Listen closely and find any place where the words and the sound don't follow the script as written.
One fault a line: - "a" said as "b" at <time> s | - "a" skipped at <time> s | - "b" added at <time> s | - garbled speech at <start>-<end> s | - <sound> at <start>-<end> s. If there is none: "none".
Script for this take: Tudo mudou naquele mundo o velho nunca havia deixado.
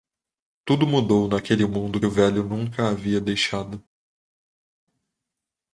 none